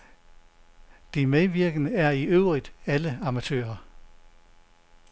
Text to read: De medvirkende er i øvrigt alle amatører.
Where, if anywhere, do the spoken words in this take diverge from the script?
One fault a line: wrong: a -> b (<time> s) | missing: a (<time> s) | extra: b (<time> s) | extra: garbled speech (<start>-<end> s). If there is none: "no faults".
no faults